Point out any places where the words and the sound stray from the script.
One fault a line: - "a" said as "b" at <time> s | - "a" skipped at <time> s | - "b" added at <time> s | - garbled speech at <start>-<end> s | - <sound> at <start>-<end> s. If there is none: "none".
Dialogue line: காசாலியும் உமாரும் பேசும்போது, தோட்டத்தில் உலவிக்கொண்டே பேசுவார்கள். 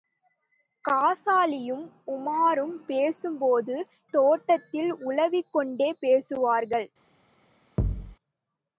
- thud at 7.8-8.1 s